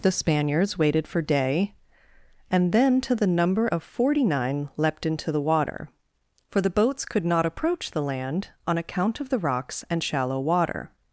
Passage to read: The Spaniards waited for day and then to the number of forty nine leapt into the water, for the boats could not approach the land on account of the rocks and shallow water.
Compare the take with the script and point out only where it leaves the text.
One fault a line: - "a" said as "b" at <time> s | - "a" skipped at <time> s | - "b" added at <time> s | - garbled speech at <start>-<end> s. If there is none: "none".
none